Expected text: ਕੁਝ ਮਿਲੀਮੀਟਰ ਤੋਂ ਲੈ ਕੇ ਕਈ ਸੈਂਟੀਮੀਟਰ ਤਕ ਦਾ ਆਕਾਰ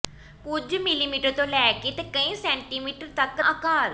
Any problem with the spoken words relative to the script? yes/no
yes